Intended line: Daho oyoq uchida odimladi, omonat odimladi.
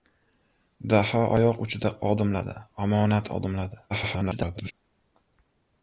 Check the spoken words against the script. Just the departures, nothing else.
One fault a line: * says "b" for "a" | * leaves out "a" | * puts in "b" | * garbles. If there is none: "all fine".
* garbles